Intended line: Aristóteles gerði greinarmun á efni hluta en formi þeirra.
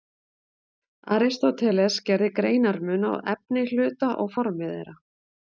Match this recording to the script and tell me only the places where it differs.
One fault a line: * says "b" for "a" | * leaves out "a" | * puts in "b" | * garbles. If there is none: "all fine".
* says "og" for "en"